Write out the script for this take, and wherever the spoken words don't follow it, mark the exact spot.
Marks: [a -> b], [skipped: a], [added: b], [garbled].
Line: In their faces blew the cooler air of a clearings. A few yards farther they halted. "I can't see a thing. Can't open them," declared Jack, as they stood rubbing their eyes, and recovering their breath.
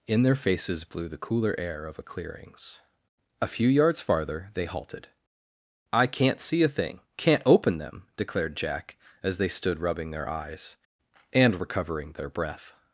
In their faces blew the cooler air of a clearings. A few yards farther they halted. "I can't see a thing. Can't open them," declared Jack, as they stood rubbing their eyes, and recovering their breath.